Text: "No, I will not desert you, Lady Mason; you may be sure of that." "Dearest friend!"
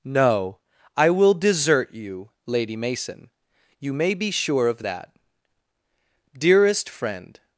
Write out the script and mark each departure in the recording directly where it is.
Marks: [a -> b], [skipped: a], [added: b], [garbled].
"No, I will [skipped: not] desert you, Lady Mason; you may be sure of that." "Dearest friend!"